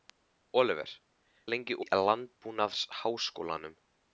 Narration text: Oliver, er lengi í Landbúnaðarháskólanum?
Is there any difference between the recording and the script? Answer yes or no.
no